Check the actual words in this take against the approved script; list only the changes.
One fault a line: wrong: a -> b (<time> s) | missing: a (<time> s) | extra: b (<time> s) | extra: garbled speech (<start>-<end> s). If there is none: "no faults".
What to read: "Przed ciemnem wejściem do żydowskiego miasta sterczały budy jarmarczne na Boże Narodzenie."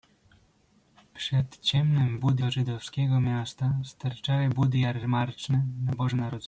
wrong: wejściem -> budy (2.1 s)